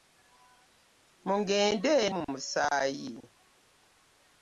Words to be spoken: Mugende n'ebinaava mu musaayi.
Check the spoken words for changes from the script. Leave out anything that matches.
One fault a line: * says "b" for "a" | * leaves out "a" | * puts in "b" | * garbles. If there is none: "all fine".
* leaves out "n'ebinaava"